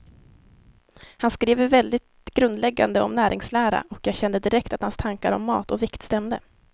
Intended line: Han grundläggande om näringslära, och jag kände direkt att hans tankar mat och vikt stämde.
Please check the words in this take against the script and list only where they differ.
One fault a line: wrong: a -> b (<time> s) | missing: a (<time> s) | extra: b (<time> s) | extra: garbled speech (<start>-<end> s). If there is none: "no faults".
extra: skriver väldigt (1.3 s)
extra: om (5.3 s)